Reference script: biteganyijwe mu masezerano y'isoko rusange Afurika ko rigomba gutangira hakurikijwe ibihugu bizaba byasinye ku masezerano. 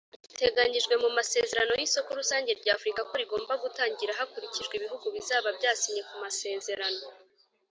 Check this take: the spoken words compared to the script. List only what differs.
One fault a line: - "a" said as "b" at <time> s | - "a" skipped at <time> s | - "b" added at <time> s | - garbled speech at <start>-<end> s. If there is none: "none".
- "rya" added at 2.6 s